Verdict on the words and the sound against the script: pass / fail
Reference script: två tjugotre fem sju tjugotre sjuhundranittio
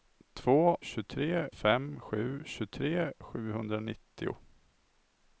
pass